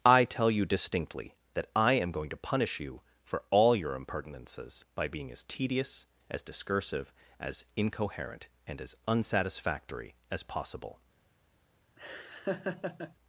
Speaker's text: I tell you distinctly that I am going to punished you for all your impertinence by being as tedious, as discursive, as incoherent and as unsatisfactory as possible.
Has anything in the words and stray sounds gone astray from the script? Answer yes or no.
yes